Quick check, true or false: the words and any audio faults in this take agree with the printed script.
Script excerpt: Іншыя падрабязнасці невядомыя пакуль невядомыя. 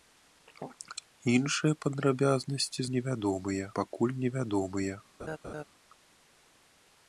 false